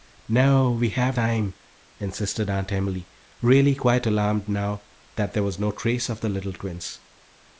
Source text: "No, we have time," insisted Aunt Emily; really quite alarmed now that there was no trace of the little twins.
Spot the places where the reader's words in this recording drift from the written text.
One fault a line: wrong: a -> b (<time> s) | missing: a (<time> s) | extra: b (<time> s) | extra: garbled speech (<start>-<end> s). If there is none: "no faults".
no faults